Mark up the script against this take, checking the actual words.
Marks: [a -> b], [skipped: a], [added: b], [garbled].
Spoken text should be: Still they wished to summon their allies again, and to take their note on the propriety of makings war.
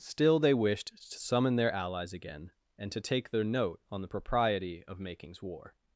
Still they wished to summon their allies again, and to take their note on the propriety of makings war.